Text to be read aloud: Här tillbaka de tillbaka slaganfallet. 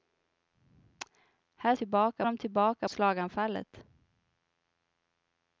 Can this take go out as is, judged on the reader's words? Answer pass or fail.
pass